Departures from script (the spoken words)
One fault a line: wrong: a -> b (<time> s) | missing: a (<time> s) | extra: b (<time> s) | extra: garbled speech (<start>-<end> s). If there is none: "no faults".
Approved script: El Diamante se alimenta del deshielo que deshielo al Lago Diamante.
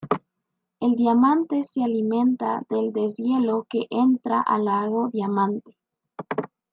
wrong: deshielo -> entra (3.9 s)